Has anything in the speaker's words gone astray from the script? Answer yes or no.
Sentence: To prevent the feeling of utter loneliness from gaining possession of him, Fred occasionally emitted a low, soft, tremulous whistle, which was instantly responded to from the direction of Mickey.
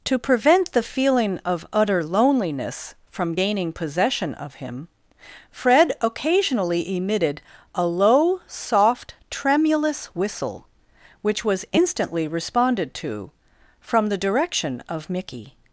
no